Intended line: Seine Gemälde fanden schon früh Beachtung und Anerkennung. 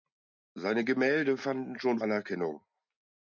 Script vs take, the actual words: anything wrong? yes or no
yes